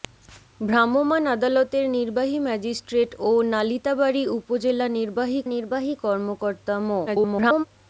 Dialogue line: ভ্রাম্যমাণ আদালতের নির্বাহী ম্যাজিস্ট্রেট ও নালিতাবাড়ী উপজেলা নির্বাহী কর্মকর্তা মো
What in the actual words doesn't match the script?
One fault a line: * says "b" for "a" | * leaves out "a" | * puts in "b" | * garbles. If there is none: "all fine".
* puts in "নির্বাহী"
* garbles